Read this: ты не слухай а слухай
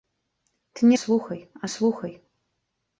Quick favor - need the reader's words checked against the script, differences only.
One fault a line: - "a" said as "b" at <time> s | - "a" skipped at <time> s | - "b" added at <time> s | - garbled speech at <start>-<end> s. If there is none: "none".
none